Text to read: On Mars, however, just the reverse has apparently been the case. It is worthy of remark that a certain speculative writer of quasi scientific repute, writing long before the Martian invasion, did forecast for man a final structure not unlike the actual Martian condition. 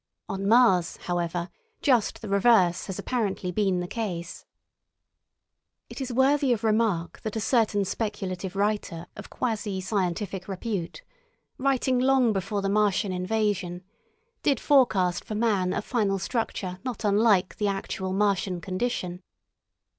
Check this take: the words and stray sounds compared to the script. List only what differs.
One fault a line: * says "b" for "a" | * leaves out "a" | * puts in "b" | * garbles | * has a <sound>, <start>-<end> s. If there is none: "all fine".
all fine